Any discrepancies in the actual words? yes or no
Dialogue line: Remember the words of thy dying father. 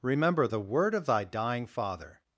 yes